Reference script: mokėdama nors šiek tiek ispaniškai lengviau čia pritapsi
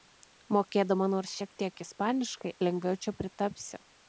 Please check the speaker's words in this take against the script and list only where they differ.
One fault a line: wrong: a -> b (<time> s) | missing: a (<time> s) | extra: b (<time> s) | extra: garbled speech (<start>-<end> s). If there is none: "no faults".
no faults